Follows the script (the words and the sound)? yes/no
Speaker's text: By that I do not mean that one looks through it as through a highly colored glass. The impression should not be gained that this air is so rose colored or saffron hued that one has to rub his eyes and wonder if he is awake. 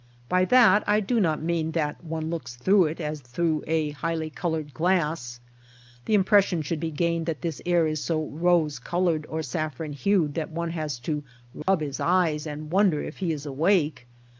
no